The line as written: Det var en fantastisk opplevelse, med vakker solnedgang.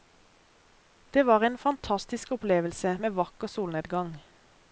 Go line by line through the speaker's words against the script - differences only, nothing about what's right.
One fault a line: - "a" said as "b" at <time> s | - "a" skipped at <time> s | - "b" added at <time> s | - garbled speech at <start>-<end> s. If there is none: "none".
none